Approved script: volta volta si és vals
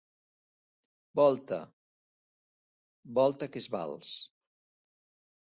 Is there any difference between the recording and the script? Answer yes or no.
yes